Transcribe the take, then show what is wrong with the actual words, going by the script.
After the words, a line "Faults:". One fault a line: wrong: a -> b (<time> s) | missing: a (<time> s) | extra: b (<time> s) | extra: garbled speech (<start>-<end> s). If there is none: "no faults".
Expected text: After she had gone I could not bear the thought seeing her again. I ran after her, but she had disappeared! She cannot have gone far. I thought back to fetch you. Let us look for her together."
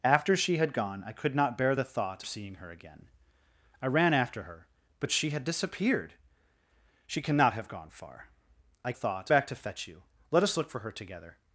After she had gone I could not bear the thought seeing her again. I ran after her, but she had disappeared! She cannot have gone far. I thought back to fetch you. Let us look for her together."
Faults:
no faults